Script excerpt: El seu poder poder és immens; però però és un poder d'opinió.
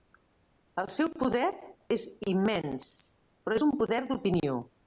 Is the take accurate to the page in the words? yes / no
no